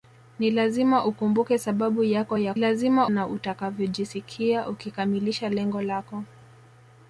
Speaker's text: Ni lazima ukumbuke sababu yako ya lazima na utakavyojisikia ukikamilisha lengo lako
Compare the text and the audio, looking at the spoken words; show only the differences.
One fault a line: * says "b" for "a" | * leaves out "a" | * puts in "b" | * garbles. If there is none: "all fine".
all fine